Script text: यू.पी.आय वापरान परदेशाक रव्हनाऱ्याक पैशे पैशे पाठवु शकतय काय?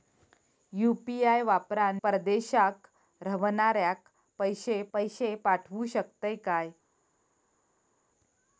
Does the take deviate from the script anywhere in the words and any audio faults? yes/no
no